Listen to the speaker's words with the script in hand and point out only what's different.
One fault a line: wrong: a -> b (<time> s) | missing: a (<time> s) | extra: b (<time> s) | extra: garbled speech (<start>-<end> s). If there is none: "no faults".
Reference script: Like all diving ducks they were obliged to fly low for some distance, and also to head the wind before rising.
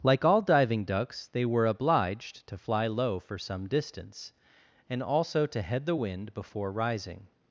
no faults